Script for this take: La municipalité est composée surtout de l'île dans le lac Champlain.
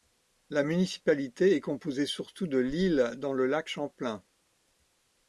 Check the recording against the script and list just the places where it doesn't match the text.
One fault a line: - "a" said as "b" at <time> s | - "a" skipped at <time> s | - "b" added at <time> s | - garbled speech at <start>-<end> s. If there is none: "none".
none